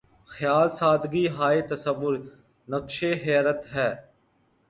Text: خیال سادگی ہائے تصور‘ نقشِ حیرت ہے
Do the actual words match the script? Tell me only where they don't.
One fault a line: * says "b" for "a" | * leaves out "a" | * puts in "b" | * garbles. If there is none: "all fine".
all fine